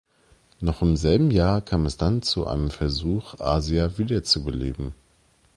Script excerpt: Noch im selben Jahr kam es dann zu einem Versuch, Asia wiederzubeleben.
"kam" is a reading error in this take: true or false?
false